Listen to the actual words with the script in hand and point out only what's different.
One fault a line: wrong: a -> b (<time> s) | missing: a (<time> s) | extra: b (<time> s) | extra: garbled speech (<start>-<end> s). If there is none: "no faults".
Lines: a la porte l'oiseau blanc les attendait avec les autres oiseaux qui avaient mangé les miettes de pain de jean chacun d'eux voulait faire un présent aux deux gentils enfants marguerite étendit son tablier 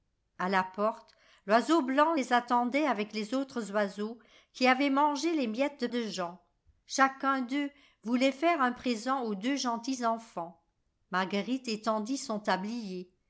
missing: pain (5.9 s)